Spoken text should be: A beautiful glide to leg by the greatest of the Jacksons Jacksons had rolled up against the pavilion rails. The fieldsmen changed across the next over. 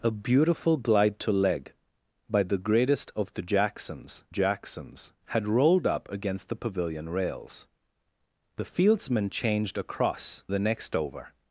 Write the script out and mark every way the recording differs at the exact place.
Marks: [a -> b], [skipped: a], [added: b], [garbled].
A beautiful glide to leg by the greatest of the Jacksons Jacksons had rolled up against the pavilion rails. The fieldsmen changed across the next over.